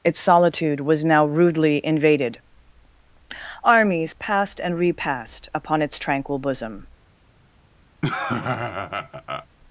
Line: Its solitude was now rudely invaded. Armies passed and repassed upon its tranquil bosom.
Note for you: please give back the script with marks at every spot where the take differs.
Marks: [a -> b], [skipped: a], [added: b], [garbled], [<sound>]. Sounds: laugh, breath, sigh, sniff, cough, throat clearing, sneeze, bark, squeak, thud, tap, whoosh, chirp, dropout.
Its solitude was now rudely invaded. Armies passed and repassed upon its tranquil bosom. [laugh]